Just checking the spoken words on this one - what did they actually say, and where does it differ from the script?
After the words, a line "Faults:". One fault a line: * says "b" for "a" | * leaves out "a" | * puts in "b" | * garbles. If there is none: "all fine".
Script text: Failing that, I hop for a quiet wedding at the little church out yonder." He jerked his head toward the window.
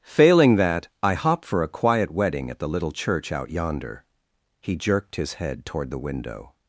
Failing that, I hop for a quiet wedding at the little church out yonder." He jerked his head toward the window.
Faults:
all fine